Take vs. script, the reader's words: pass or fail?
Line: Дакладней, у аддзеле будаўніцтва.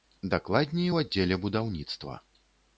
pass